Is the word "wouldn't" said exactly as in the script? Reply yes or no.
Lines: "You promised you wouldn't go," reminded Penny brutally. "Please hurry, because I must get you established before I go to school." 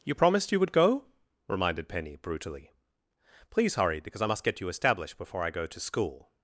no